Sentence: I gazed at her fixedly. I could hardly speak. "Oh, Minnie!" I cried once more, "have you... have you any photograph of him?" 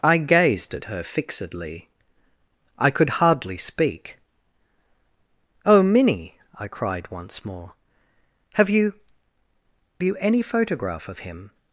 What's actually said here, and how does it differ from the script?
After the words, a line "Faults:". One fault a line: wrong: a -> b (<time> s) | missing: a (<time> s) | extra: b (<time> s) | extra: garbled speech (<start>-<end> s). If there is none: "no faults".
I gazed at her fixedly. I could hardly speak. "Oh, Minnie!" I cried once more, "have you... you any photograph of him?"
Faults:
missing: have (8.9 s)